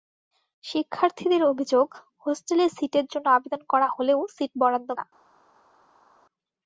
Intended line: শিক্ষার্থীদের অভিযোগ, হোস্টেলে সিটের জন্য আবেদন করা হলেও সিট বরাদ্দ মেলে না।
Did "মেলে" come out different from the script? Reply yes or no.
yes